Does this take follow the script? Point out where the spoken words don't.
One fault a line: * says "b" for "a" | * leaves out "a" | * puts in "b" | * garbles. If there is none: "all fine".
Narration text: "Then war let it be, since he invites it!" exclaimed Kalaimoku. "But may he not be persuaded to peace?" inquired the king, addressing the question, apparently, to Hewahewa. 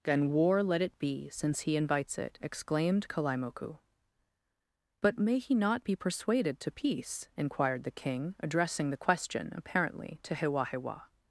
all fine